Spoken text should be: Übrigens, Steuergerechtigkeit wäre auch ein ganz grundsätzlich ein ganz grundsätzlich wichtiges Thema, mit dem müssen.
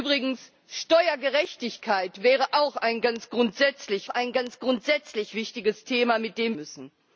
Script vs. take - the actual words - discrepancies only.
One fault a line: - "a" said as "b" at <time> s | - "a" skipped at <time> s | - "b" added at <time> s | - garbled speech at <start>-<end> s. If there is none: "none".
none